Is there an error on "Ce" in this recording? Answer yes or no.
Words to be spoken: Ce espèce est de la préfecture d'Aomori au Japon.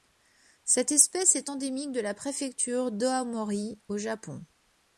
yes